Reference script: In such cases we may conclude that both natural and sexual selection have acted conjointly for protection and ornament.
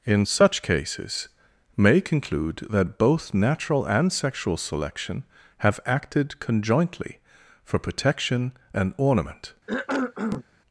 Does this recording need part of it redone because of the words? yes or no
yes